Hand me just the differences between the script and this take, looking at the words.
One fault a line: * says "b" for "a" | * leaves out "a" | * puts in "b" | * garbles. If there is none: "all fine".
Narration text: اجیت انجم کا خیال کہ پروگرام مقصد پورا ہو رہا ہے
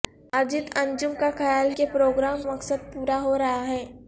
all fine